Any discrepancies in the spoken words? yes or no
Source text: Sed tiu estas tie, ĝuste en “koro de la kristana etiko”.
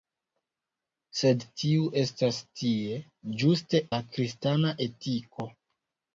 yes